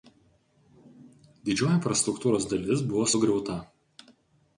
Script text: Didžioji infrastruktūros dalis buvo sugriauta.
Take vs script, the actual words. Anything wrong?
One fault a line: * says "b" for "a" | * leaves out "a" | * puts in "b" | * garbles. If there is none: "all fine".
all fine